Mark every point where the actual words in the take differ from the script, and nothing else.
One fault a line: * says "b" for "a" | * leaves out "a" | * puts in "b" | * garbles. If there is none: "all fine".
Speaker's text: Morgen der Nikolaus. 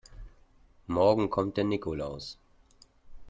* puts in "kommt"